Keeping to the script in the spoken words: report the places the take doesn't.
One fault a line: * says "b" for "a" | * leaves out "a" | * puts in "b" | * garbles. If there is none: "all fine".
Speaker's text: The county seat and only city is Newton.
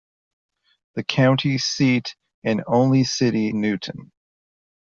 * leaves out "is"